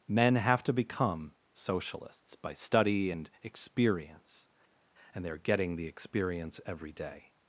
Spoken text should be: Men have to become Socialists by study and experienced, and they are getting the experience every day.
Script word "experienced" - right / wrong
wrong